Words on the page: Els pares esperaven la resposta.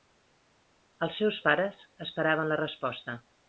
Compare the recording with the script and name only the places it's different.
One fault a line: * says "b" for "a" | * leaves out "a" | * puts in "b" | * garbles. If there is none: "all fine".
* puts in "seus"